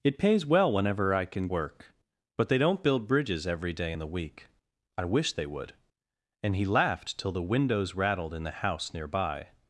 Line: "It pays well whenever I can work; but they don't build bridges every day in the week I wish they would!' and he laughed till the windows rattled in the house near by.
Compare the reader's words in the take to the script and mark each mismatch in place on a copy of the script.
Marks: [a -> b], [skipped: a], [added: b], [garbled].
"It pays well whenever I can work; but they don't build bridges every day in the week I wish they would!' and he laughed till the windows rattled in the house near by.